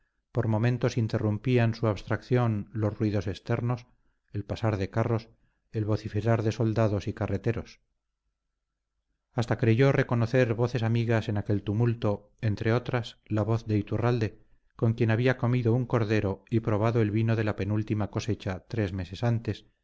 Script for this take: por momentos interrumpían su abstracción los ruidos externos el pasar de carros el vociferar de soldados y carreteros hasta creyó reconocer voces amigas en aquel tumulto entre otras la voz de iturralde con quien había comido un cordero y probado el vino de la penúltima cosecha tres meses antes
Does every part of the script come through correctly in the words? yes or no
yes